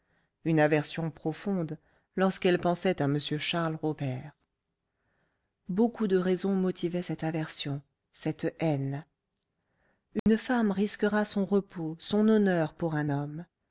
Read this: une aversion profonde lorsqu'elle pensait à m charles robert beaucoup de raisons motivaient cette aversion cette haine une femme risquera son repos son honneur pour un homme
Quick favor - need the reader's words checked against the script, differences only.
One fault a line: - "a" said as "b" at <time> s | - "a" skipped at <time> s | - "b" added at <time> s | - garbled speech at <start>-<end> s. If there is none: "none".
none